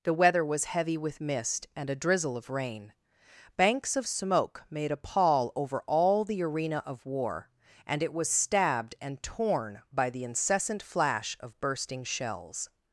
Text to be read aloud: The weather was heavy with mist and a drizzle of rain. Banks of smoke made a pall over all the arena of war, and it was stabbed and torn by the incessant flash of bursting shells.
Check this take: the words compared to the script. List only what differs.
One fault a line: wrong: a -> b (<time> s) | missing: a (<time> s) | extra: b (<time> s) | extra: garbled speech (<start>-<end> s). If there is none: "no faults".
no faults